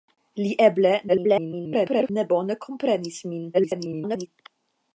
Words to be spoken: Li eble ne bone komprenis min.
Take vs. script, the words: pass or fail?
fail